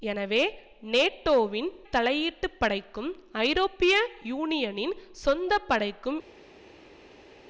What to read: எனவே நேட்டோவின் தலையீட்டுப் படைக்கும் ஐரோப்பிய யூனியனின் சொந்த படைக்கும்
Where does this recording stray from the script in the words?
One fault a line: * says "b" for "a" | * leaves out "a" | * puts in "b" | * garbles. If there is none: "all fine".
all fine